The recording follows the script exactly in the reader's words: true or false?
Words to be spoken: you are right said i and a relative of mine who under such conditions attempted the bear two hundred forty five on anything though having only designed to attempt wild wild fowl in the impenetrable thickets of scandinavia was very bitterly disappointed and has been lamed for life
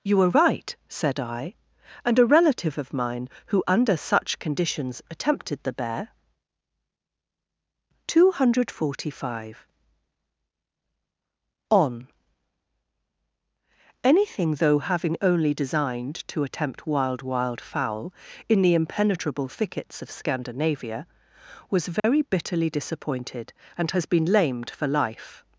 true